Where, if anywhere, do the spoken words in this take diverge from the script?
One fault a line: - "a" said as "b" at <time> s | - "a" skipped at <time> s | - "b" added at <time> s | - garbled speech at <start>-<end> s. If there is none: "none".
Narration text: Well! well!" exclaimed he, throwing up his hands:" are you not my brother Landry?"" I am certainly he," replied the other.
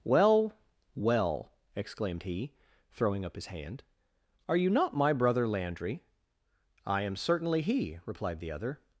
- "hands" said as "hand" at 3.5 s